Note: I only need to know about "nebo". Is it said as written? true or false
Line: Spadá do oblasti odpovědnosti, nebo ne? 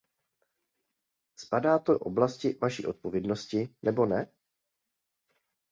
true